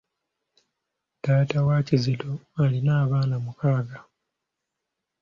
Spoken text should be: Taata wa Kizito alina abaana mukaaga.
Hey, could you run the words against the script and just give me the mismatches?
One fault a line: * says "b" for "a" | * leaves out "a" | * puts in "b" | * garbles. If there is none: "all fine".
all fine